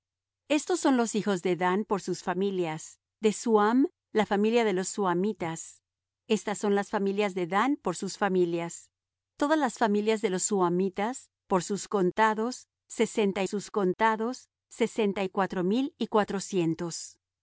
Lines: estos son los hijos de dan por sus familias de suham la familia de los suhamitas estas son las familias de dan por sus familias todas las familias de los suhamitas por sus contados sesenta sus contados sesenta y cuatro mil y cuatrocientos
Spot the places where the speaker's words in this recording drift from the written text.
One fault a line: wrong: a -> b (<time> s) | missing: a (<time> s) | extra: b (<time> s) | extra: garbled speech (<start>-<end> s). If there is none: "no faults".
no faults